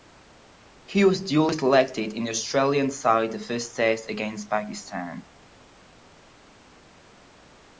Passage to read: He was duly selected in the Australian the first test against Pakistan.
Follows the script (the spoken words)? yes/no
no